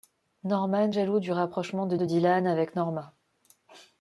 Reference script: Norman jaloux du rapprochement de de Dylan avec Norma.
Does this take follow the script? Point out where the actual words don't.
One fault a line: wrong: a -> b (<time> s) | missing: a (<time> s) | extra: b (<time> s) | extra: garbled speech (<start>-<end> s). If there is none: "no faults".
no faults